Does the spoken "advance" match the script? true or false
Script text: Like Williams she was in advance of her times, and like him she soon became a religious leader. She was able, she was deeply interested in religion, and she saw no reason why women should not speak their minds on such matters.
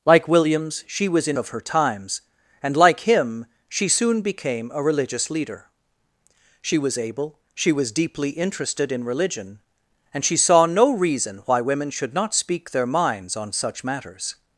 false